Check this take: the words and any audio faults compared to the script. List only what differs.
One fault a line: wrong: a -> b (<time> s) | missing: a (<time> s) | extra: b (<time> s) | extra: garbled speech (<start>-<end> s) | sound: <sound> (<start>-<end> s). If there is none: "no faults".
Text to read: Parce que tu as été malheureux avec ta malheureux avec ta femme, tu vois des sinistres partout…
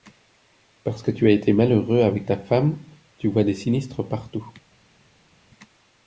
missing: malheureux avec ta (2.4 s)